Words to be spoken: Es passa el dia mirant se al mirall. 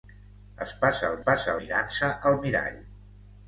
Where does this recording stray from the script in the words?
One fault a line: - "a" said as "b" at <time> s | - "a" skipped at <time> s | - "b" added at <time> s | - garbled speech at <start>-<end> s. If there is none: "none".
- "dia" said as "passa" at 1.3 s